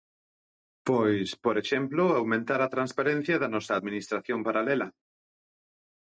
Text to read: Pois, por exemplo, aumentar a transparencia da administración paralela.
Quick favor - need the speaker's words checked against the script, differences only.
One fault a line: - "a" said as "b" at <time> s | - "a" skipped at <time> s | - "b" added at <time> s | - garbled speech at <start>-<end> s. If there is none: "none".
- "nosa" added at 3.5 s